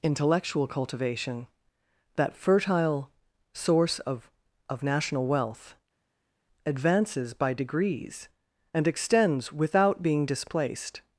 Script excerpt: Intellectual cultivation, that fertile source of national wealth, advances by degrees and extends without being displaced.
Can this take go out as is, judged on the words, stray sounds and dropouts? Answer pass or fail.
fail